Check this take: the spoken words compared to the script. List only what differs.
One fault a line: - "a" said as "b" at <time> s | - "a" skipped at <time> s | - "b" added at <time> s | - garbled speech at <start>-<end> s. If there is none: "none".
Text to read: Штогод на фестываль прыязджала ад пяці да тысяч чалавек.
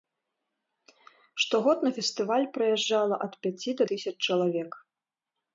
none